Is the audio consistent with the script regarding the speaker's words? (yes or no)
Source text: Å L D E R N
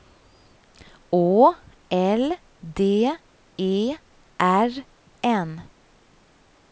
yes